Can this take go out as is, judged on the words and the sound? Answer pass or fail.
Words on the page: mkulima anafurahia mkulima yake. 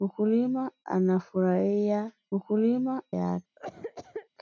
fail